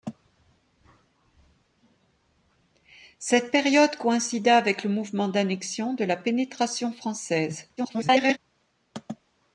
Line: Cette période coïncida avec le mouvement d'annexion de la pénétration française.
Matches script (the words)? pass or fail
fail